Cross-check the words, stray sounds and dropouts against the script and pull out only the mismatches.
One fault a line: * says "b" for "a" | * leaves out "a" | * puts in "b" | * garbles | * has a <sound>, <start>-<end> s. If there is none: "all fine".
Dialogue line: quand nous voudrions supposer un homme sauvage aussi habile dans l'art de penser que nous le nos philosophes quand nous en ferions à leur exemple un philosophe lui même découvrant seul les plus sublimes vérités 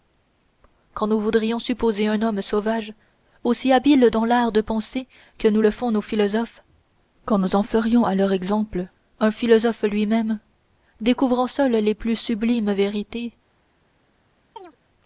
* puts in "font"
* has a chirp, 14.6-14.8 s